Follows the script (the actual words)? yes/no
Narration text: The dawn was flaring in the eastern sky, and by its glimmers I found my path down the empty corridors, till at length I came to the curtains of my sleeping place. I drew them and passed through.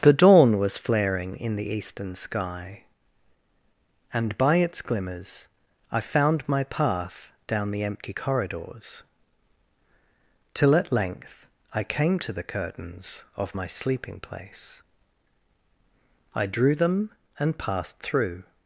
yes